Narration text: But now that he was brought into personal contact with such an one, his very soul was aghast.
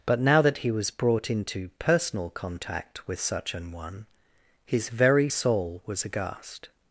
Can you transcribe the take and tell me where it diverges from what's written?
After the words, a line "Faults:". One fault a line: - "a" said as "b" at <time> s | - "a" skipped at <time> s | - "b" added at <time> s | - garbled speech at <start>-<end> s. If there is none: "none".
But now that he was brought into personal contact with such an one, his very soul was aghast.
Faults:
none